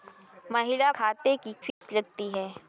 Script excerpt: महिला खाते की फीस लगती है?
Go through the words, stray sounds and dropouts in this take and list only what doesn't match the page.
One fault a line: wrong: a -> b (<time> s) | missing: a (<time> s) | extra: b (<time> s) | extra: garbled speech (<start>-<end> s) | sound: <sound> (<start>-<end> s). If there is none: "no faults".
sound: dropout (1.7-1.8 s)